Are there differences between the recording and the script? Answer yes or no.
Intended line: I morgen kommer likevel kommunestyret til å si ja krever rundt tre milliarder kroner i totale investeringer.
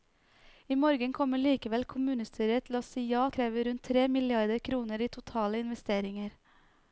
no